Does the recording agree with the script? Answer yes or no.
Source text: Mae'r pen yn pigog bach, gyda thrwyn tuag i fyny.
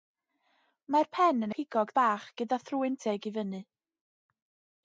yes